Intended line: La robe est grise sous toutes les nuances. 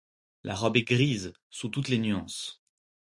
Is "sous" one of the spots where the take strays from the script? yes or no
no